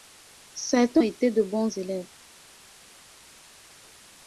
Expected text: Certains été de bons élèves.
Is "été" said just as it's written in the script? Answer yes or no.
yes